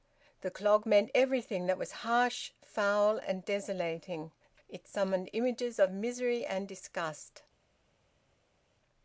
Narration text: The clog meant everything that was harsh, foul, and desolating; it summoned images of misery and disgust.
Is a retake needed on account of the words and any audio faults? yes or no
no